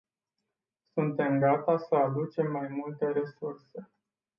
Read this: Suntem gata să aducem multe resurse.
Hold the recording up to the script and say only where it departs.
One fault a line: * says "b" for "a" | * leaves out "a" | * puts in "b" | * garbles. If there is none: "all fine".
* puts in "mai"